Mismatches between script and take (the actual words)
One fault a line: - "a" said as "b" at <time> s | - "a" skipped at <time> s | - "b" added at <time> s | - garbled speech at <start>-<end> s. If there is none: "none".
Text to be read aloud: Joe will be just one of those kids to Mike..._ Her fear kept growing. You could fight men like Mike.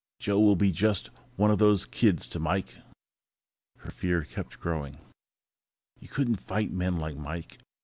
- "could" said as "couldn't" at 6.1 s